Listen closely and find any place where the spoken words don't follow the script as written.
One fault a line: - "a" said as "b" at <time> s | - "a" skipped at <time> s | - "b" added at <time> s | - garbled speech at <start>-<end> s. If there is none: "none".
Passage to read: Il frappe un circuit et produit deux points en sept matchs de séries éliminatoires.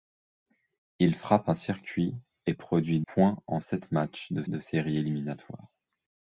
- "deux" skipped at 3.0 s
- "de" added at 4.5 s